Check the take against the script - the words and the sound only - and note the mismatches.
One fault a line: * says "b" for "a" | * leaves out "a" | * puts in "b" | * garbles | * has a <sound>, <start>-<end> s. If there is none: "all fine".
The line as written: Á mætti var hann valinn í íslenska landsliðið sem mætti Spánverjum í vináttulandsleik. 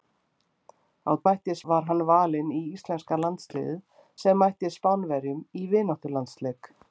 all fine